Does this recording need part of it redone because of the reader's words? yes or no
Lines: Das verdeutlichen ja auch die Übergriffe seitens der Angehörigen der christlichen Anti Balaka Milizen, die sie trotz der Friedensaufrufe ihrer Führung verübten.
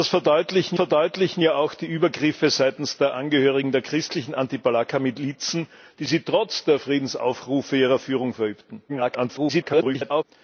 yes